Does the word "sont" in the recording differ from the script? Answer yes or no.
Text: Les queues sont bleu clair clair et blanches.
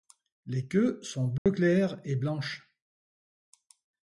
no